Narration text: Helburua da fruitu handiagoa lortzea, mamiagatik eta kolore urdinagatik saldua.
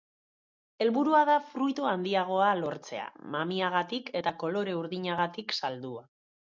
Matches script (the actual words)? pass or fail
pass